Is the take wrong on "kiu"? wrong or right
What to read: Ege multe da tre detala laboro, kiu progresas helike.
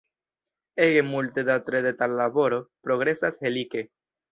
wrong